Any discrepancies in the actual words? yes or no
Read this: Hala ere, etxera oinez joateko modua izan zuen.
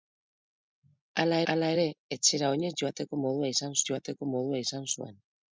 yes